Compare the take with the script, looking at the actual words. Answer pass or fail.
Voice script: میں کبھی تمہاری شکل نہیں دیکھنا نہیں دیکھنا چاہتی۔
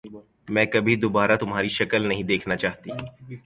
fail